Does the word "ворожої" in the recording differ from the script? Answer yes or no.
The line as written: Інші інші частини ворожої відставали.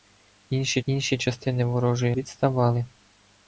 no